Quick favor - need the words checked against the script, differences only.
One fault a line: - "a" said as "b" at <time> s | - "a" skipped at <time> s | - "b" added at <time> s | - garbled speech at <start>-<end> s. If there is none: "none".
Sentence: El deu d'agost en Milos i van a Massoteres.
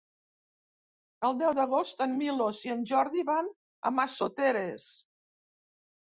- "en Jordi" added at 2.8 s